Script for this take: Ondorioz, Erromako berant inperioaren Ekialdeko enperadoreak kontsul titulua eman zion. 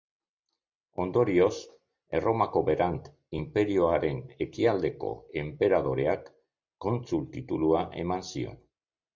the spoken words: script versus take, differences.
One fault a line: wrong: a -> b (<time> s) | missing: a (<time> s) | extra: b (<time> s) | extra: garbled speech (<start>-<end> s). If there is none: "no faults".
no faults